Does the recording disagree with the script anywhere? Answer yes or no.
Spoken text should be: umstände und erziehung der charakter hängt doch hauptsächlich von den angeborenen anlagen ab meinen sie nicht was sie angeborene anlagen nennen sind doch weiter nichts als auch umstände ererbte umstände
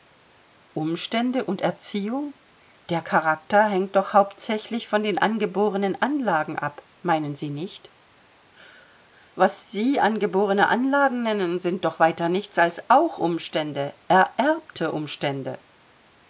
no